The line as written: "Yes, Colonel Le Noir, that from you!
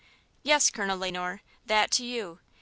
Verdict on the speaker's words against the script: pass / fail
fail